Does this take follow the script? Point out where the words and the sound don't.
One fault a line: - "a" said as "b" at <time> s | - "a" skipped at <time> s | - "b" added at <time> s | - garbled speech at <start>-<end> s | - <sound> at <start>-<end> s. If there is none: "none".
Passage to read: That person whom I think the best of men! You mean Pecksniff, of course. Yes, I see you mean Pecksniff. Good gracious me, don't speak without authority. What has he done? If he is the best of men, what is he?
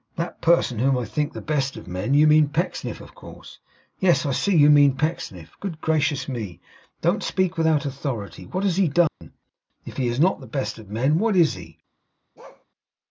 - dropout at 9.1-9.2 s
- "not" added at 10.2 s
- bark at 12.4-12.7 s